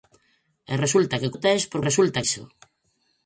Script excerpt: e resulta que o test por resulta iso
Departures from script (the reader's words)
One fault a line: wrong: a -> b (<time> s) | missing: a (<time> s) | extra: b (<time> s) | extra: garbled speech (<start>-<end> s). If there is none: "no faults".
no faults